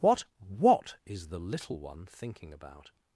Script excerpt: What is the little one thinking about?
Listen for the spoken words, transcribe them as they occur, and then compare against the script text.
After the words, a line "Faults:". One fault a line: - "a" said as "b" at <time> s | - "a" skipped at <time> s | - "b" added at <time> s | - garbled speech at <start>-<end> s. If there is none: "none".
What what is the little one thinking about?
Faults:
- "what" added at 0.4 s